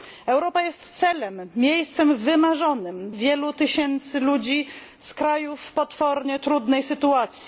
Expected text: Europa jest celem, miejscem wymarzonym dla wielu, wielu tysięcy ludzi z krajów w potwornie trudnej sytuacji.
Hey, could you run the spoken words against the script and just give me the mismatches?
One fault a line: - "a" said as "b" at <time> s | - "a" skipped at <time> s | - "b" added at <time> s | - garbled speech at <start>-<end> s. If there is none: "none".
- "dla wielu" skipped at 3.1 s